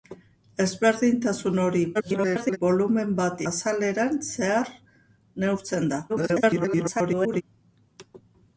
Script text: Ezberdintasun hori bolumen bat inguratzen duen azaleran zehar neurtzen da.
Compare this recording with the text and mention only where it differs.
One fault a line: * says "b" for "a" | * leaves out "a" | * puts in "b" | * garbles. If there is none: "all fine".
* garbles
* leaves out "inguratzen duen"
* garbles